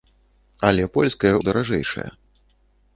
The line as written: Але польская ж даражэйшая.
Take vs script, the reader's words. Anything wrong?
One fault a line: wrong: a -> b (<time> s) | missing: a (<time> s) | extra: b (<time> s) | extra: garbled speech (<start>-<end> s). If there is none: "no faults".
no faults